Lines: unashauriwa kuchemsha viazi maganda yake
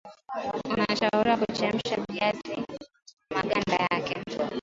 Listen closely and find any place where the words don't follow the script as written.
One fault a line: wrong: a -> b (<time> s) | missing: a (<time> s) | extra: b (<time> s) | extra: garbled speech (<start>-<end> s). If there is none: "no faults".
no faults